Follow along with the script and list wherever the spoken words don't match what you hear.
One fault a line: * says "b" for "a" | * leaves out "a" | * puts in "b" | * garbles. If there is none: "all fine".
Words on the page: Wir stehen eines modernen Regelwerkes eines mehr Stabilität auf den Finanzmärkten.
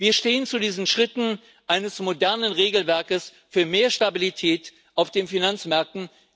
* puts in "zu diesen Schritten"
* says "für" for "eines"